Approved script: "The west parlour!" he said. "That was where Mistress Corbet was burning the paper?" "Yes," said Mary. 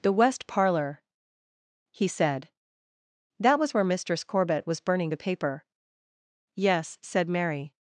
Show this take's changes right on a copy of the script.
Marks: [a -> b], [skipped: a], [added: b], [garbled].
"The west parlour!" he said. "That was where Mistress Corbet was burning the paper?" "Yes," said Mary.